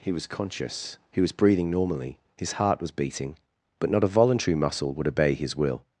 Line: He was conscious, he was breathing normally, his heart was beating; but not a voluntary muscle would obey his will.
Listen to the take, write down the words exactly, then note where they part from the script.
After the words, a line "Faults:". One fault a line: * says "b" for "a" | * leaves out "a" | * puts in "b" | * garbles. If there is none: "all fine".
He was conscious, he was breathing normally, his heart was beating; but not a voluntary muscle would obey his will.
Faults:
all fine